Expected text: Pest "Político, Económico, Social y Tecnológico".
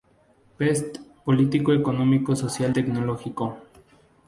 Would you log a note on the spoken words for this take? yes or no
yes